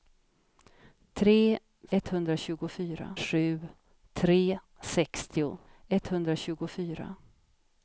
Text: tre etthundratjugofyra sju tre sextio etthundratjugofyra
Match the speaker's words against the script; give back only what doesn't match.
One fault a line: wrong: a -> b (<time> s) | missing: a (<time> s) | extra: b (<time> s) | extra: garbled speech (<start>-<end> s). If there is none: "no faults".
no faults